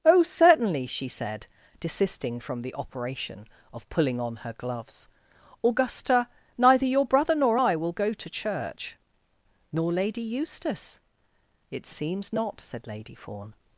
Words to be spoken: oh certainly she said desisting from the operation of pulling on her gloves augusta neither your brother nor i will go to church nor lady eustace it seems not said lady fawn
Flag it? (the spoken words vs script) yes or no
no